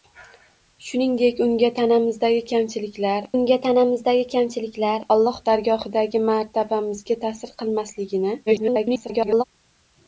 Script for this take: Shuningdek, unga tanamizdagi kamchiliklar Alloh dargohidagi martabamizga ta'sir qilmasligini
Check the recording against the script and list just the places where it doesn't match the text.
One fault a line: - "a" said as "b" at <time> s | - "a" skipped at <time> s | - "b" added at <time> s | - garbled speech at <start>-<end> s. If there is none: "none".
- "unga tanamizdagi kamchiliklar" added at 3.4 s
- garbled speech at 8.5-9.4 s